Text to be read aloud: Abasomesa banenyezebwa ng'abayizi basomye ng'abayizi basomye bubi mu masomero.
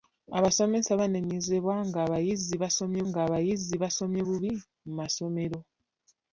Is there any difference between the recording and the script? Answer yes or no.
no